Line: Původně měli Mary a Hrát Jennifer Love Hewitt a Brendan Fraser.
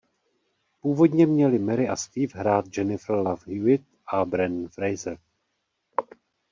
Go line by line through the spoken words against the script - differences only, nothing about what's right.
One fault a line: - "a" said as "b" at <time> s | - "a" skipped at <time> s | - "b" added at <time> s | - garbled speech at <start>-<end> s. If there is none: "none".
- "Steve" added at 2.0 s